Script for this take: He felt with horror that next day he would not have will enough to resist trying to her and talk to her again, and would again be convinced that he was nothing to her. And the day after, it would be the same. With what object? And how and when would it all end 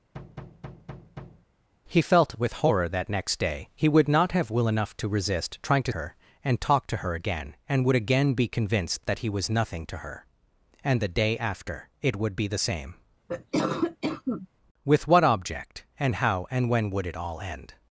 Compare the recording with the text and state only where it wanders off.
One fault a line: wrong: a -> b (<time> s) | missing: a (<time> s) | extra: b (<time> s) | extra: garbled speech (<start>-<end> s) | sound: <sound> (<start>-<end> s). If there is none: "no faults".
sound: thud (0.1-1.5 s)
sound: cough (13.3-14.5 s)